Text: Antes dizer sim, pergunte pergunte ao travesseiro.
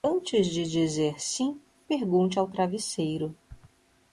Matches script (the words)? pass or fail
fail